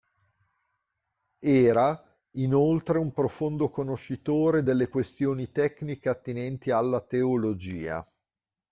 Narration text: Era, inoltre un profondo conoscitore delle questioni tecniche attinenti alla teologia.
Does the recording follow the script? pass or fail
pass